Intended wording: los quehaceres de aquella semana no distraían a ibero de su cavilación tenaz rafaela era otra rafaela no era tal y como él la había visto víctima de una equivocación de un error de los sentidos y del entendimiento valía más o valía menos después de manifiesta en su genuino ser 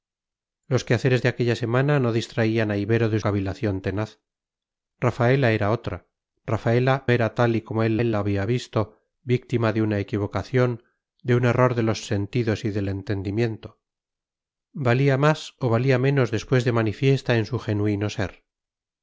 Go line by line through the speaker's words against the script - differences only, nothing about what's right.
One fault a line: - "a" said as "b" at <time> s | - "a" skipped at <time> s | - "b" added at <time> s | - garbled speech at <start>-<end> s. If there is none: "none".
- "su" skipped at 3.2 s
- "no" skipped at 7.1 s
- "él" added at 8.0 s